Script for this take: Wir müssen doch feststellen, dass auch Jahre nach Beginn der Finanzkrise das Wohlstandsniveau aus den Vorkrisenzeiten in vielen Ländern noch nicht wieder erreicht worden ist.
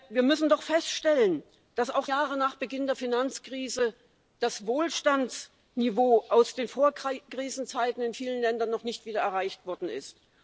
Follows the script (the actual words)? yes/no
yes